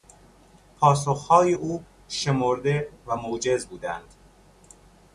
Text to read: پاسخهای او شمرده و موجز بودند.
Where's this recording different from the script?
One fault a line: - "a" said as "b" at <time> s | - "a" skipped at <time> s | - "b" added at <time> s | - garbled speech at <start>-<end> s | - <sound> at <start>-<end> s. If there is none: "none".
none